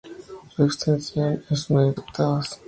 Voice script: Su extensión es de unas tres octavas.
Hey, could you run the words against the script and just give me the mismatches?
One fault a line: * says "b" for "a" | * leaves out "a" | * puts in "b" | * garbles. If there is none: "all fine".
* leaves out "tres"